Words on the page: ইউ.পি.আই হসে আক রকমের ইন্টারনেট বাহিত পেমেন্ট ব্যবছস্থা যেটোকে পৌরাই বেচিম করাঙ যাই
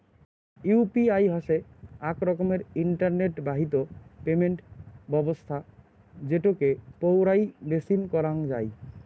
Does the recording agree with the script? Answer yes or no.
yes